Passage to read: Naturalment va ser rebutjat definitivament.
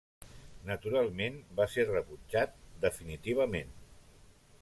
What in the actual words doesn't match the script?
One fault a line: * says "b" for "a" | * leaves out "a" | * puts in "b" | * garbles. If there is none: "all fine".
all fine